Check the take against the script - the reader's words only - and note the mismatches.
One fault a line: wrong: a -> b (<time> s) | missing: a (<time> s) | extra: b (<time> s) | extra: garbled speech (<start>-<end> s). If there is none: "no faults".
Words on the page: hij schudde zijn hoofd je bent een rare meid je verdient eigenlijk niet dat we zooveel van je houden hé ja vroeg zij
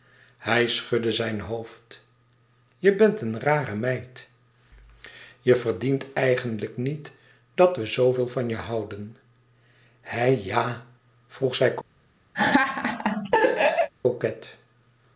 no faults